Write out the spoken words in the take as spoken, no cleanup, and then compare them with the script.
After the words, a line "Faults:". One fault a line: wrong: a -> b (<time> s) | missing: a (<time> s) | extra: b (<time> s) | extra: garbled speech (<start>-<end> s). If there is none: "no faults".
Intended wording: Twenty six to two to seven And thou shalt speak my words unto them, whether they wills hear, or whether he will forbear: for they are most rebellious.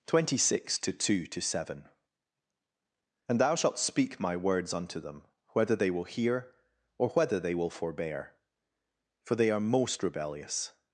Twenty six to two to seven And thou shalt speak my words unto them, whether they will hear, or whether they will forbear: for they are most rebellious.
Faults:
wrong: wills -> will (5.9 s)
wrong: he -> they (7.4 s)